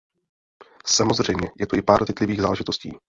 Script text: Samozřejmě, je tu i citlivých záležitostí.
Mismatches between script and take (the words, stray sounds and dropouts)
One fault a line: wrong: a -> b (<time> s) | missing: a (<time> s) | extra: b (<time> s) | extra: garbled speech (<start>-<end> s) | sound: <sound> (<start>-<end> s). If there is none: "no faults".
extra: pár (1.8 s)